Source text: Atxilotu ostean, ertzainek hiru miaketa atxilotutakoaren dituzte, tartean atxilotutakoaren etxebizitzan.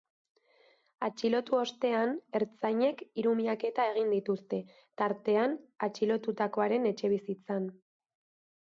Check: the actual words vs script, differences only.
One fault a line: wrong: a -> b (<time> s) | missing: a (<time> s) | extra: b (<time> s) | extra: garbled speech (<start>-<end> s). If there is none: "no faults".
wrong: atxilotutakoaren -> egin (3.9 s)